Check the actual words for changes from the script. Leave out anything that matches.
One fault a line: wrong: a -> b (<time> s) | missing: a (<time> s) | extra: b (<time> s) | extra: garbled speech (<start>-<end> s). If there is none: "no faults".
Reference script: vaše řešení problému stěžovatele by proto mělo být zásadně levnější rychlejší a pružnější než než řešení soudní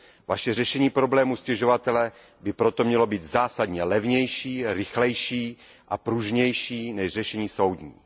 missing: než (7.1 s)